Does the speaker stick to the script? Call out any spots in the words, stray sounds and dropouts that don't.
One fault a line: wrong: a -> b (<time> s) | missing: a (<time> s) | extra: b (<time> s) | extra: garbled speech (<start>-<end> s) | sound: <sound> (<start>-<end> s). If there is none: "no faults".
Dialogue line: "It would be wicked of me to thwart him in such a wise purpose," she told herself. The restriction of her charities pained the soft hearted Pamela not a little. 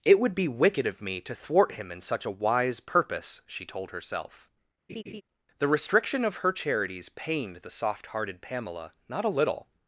sound: laugh (4.9-5.2 s)